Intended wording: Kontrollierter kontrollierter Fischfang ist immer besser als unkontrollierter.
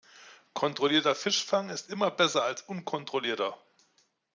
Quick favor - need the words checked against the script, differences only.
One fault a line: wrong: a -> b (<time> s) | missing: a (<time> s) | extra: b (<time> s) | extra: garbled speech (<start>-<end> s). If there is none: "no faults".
missing: kontrollierter (1.1 s)